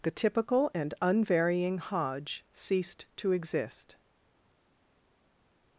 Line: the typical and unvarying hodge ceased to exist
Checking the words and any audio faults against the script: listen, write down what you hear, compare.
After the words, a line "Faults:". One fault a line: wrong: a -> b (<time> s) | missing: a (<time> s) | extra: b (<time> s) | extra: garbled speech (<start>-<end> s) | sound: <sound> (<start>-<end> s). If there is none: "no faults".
the typical and unvarying hodge ceased to exist
Faults:
no faults